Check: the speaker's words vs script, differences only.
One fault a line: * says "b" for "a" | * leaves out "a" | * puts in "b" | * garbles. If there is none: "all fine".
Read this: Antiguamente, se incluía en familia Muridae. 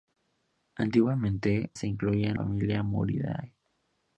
all fine